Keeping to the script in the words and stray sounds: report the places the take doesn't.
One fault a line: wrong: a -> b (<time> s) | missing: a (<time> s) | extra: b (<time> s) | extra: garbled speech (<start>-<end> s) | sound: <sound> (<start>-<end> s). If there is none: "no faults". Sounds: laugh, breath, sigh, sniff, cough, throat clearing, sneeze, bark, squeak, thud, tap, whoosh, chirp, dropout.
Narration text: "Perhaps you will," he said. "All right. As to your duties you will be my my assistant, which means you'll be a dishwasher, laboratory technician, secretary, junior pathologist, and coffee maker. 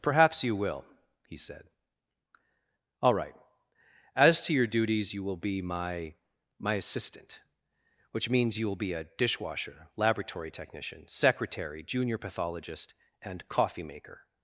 no faults